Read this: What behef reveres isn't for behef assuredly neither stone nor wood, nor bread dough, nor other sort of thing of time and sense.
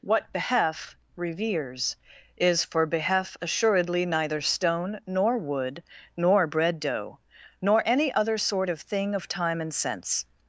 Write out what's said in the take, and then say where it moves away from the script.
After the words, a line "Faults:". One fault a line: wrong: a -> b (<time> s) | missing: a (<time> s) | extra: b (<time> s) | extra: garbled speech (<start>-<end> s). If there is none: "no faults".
What behef reveres is for behef assuredly neither stone nor wood, nor bread dough, nor any other sort of thing of time and sense.
Faults:
wrong: isn't -> is (2.4 s)
extra: any (7.9 s)